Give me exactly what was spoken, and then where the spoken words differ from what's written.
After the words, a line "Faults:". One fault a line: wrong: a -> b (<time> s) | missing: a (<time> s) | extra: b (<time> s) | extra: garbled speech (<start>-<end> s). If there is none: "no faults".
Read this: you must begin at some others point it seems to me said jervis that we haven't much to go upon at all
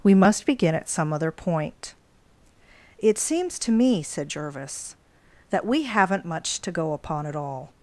we must begin at some other point it seems to me said jervis that we haven't much to go upon at all
Faults:
wrong: you -> we (0.0 s)
wrong: others -> other (1.1 s)